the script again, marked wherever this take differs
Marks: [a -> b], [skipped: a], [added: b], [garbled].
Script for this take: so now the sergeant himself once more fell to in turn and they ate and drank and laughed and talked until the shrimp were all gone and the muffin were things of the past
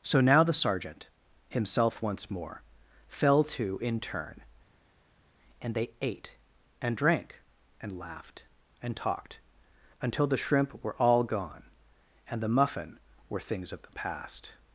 so now the sergeant himself once more fell to in turn and they ate and drank and laughed and talked until the shrimp were all gone and the muffin were things of the past